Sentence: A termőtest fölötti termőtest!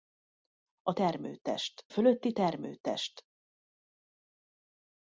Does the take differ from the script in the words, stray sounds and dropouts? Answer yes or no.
no